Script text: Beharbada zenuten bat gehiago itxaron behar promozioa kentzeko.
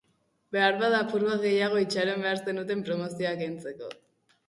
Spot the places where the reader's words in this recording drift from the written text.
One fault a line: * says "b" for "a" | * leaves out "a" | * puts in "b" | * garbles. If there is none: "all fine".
* says "apur" for "zenuten"
* puts in "zenuten"